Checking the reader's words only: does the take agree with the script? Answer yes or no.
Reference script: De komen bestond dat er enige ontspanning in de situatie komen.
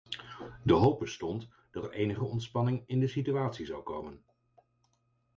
no